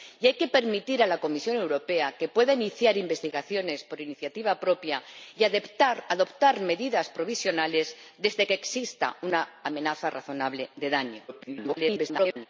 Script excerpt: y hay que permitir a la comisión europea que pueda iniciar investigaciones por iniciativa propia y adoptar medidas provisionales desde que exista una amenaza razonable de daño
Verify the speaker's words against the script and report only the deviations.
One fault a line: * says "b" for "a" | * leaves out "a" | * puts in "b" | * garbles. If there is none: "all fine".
* garbles